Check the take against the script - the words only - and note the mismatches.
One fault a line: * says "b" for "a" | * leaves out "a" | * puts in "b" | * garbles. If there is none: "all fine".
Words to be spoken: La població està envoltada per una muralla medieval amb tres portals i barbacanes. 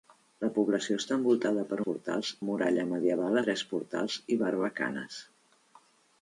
* says "portals" for "una"
* leaves out "amb"